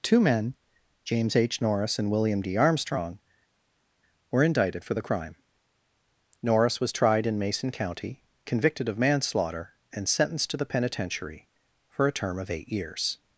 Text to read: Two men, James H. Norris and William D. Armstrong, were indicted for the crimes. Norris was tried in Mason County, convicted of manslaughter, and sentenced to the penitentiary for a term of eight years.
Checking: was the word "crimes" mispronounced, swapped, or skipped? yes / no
yes